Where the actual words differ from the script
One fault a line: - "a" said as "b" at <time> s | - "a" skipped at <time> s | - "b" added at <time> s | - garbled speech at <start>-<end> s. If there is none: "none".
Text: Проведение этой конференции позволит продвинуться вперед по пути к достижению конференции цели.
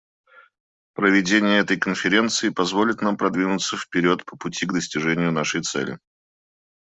- "нам" added at 3.0 s
- "конференции" said as "нашей" at 5.3 s